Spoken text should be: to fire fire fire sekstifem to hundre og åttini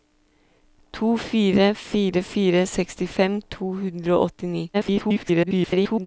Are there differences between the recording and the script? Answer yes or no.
yes